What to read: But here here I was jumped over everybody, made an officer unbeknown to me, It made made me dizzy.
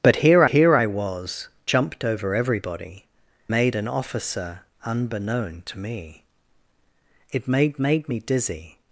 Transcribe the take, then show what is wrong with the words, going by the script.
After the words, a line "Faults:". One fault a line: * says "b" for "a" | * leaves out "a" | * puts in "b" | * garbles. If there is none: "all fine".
But here here I was jumped over everybody, made an officer unbeknown to me, It made made me dizzy.
Faults:
all fine